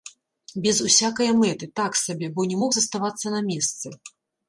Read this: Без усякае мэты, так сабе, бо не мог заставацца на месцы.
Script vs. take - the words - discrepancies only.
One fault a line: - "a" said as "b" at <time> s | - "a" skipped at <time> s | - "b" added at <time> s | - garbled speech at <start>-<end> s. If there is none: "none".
none